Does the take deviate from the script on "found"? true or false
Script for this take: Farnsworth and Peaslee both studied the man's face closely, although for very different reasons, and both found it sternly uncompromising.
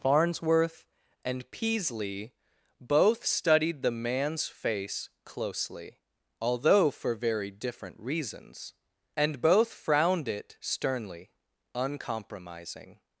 true